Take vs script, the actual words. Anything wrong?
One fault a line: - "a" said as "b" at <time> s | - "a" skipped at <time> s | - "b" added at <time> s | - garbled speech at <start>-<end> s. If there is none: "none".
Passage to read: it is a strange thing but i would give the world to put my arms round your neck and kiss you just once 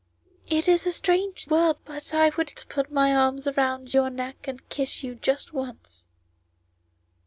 - "thing" said as "world" at 1.4 s
- "give the world" skipped at 2.5 s